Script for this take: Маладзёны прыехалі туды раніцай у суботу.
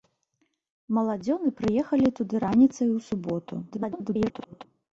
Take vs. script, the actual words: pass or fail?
fail